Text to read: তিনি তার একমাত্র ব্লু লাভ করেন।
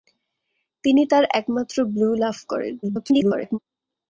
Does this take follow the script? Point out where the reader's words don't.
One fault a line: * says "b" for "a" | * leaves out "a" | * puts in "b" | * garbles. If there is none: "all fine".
* garbles